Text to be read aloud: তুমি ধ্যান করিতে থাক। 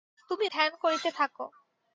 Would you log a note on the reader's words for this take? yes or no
no